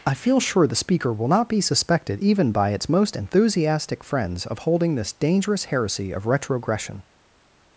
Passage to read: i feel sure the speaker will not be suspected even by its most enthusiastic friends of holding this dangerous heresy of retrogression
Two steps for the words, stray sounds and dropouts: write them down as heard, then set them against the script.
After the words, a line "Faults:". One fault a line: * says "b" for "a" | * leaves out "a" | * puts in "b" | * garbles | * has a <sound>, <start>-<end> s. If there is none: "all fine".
i feel sure the speaker will not be suspected even by its most enthusiastic friends of holding this dangerous heresy of retrogression
Faults:
all fine